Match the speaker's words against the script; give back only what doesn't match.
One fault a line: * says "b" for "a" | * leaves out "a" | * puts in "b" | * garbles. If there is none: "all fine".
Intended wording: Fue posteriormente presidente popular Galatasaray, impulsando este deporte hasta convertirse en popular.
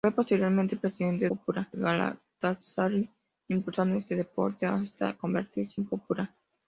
all fine